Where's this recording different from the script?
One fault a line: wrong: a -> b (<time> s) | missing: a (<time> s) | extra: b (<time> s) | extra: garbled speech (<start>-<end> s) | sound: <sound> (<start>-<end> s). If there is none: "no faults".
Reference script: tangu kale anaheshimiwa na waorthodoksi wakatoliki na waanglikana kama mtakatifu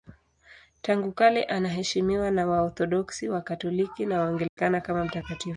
sound: dropout (4.5-4.6 s)